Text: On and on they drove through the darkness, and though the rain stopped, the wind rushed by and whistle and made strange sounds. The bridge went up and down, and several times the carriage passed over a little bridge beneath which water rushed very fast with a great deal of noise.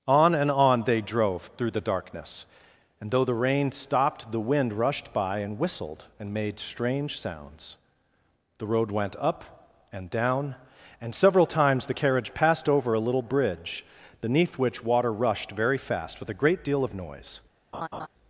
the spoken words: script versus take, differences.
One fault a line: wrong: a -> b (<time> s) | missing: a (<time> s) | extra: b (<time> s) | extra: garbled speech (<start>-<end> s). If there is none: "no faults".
wrong: whistle -> whistled (5.6 s)
wrong: bridge -> road (8.7 s)